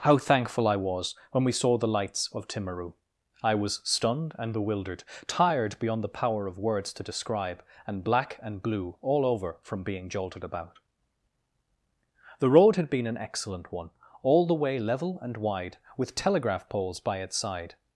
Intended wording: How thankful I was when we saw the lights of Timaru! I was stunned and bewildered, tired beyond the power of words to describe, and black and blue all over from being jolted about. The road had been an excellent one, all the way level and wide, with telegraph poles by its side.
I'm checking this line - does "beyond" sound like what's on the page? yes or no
yes